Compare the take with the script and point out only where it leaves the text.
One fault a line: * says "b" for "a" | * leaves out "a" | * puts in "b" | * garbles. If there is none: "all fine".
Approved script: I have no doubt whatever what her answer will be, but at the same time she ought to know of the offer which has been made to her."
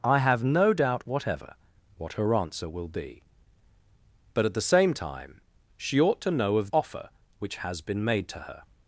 * leaves out "the"